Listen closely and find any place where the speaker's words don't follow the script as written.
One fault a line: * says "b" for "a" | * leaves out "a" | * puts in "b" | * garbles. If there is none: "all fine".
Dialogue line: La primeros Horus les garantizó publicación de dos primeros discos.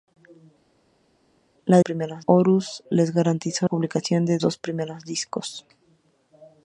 all fine